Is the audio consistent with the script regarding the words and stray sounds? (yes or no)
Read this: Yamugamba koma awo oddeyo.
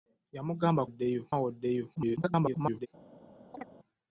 no